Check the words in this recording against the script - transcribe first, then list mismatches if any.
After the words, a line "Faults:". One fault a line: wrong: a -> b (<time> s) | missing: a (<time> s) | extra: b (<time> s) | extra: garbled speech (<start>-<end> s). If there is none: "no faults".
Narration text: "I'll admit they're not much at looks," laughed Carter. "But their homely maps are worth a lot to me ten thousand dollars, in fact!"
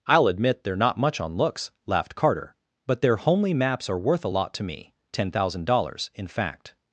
"I'll admit they're not much on looks," laughed Carter. "But their homely maps are worth a lot to me ten thousand dollars, in fact!"
Faults:
wrong: at -> on (1.2 s)